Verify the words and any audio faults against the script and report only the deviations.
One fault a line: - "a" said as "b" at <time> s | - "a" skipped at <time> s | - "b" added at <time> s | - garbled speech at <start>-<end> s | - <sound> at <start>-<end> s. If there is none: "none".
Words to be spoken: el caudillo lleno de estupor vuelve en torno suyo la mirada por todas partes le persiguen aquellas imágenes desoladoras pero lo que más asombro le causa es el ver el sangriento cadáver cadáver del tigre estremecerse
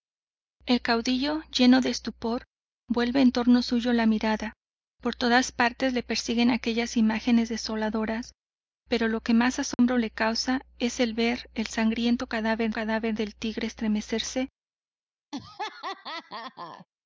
- dropout at 9.7-9.8 s
- laugh at 15.3-16.9 s